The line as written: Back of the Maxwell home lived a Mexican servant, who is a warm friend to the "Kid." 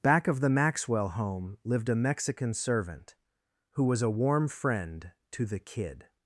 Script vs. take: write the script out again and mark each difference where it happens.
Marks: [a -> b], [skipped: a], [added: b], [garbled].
Back of the Maxwell home lived a Mexican servant, who [is -> was] a warm friend to the "Kid."